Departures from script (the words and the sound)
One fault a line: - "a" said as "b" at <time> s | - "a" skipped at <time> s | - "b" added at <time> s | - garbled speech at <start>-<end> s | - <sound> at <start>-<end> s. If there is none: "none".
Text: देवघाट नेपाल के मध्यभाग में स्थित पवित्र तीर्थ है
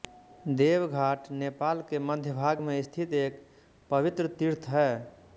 - "एक" added at 3.2 s